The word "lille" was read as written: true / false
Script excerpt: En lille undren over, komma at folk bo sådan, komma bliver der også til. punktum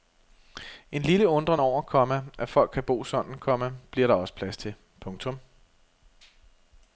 true